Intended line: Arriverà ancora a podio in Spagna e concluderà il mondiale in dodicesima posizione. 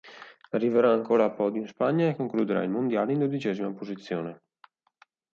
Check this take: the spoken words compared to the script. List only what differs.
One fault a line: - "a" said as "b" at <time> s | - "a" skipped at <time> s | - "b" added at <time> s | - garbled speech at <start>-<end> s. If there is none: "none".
none